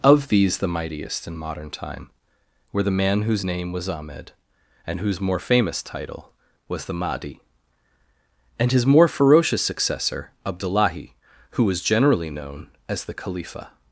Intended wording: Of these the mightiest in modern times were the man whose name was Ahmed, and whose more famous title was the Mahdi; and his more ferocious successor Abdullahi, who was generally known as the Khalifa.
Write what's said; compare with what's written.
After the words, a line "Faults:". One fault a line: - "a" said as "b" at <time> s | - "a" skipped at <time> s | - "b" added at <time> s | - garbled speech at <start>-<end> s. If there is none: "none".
Of these the mightiest in modern time were the man whose name was Ahmed, and whose more famous title was the Mahdi; and his more ferocious successor Abdullahi, who was generally known as the Khalifa.
Faults:
- "times" said as "time" at 1.7 s